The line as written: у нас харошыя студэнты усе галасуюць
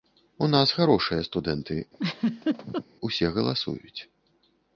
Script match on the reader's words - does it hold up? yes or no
yes